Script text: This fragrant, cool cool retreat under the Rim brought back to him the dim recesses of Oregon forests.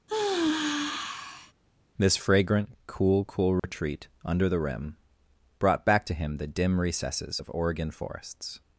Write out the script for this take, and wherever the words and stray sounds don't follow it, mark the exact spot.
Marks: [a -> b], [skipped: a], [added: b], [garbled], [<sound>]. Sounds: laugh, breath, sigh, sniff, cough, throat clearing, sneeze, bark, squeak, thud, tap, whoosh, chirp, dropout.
[sigh] This fragrant, cool cool retreat [dropout] under the Rim brought back to him the dim recesses of Oregon forests.